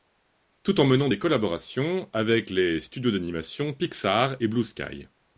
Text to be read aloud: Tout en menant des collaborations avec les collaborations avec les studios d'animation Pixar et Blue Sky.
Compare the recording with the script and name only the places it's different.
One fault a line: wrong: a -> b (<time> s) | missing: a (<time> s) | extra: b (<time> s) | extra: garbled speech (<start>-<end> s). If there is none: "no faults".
missing: collaborations avec les (2.8 s)